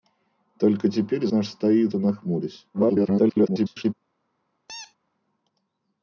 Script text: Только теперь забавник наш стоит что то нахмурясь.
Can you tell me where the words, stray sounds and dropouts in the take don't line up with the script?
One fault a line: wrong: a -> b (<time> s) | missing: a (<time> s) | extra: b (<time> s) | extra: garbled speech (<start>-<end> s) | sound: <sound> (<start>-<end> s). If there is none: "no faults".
missing: забавник (1.3 s)
missing: что (1.9 s)
extra: garbled speech (2.7-3.9 s)
sound: squeak (4.7-5.0 s)